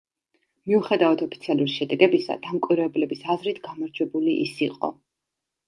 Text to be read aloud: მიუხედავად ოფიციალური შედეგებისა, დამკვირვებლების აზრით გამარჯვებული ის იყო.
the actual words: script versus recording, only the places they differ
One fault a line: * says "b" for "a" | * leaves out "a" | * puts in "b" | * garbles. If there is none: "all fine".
all fine